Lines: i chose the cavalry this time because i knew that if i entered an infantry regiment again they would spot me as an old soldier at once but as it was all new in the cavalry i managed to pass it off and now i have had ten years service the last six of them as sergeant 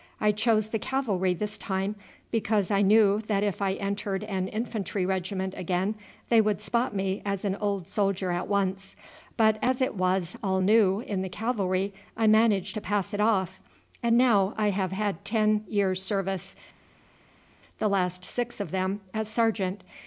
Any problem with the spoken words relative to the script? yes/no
no